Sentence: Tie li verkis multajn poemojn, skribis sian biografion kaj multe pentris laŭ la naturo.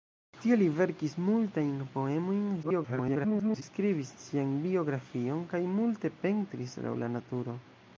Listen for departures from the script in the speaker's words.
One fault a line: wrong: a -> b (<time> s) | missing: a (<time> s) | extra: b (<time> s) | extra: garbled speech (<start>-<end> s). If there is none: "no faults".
extra: garbled speech (2.6-3.6 s)